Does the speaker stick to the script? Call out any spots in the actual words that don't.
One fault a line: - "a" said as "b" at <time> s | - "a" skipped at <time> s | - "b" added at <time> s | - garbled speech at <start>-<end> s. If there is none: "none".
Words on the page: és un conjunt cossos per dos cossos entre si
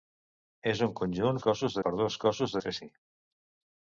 none